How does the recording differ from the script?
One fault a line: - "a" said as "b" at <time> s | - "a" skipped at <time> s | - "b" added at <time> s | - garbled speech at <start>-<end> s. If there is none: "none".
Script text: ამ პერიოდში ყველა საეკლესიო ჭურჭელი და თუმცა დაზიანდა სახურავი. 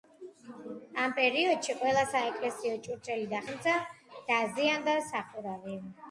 none